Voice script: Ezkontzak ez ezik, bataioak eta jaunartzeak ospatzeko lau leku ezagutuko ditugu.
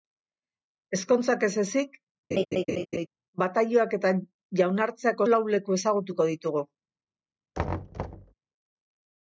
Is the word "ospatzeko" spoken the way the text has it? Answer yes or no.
no